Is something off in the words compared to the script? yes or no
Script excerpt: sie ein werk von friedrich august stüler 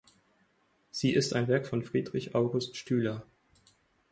yes